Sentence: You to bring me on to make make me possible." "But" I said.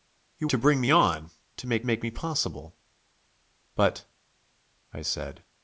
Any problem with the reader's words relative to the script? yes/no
no